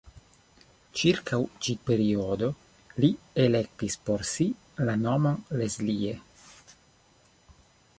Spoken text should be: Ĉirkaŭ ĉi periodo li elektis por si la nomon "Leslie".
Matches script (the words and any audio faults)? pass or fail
pass